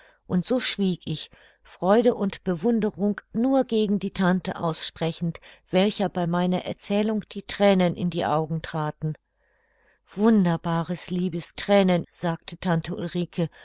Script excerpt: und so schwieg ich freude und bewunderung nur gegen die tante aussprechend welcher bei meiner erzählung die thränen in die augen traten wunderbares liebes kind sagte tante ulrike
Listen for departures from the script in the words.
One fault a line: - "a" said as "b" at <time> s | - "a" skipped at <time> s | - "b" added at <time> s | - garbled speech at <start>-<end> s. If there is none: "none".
- "kind" said as "thränen" at 11.5 s